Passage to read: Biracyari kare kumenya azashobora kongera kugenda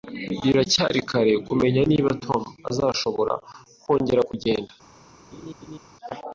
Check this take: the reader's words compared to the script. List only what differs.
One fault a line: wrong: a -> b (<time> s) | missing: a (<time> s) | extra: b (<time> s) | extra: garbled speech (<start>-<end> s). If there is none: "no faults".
extra: niba Tom (1.9 s)